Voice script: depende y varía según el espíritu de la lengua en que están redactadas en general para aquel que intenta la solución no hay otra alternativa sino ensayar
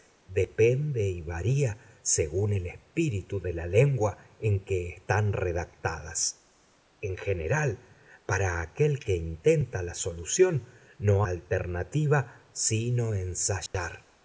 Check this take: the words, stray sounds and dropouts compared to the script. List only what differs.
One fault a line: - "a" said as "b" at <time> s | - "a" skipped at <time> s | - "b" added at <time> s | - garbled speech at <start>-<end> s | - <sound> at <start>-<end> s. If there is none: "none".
- "hay otra" skipped at 11.3 s
- dropout at 13.7-13.7 s